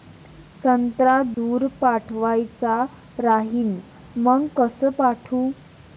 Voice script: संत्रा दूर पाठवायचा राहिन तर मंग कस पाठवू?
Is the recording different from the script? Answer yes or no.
yes